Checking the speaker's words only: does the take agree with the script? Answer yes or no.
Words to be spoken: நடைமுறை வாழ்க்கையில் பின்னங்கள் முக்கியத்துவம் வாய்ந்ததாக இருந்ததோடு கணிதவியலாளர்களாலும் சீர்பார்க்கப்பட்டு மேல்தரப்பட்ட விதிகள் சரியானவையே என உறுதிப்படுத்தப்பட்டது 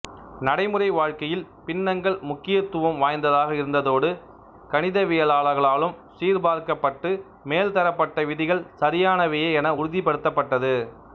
yes